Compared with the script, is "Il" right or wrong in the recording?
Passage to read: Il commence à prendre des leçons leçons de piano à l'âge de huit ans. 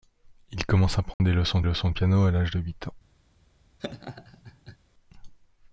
right